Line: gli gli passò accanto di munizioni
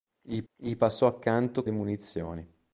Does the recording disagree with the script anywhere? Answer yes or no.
no